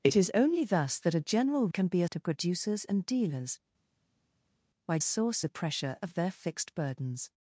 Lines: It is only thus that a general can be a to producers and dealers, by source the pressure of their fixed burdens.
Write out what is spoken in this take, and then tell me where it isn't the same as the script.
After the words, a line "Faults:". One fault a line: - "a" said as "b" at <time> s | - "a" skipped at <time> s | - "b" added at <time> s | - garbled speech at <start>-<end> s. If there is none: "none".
It is only thus that a general can be a to producers and dealers, by source the pressure of their fixed burdens.
Faults:
none